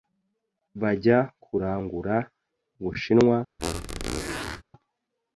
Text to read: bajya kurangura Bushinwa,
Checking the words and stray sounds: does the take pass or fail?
fail